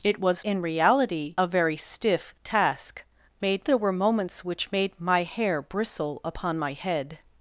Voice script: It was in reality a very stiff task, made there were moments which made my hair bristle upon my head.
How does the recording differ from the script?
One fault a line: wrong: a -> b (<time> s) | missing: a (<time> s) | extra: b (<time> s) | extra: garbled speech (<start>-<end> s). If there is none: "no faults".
no faults